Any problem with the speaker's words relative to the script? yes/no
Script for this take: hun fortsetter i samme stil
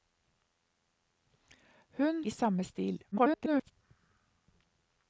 yes